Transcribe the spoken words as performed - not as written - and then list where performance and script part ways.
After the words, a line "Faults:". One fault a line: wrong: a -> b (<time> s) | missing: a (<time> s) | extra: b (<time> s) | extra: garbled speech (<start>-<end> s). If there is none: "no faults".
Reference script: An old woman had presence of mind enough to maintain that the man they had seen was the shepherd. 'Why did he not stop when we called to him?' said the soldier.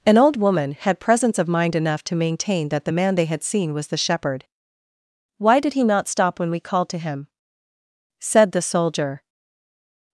An old woman had presence of mind enough to maintain that the man they had seen was the shepherd. 'Why did he not stop when we called to him?' said the soldier.
Faults:
no faults